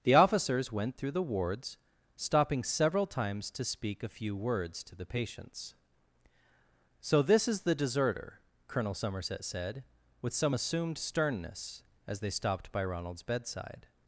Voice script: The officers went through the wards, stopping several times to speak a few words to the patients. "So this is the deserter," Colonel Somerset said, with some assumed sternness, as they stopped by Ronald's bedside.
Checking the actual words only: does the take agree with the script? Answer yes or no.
yes